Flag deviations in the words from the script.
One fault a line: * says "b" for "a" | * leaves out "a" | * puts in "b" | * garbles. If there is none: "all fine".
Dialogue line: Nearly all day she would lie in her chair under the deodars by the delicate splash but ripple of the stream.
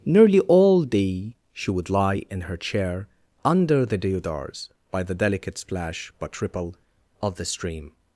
all fine